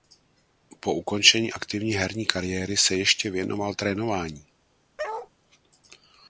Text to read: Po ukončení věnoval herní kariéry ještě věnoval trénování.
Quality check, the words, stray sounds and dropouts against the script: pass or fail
fail